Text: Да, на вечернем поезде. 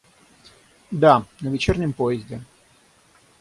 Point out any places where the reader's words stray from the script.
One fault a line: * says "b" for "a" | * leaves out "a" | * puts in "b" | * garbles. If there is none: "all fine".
all fine